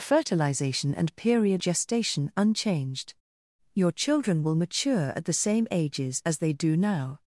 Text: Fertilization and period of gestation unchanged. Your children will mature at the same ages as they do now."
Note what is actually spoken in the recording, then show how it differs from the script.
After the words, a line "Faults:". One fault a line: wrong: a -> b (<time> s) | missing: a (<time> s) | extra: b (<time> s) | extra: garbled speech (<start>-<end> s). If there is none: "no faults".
Fertilization and period gestation unchanged. Your children will mature at the same ages as they do now."
Faults:
missing: of (1.6 s)